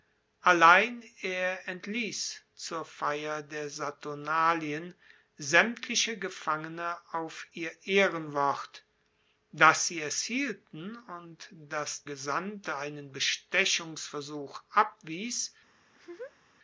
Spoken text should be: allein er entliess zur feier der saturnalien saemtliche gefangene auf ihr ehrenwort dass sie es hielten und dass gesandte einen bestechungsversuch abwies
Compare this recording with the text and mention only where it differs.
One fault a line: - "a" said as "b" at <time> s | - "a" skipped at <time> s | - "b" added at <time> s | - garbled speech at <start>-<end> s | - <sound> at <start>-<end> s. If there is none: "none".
- laugh at 15.9-16.5 s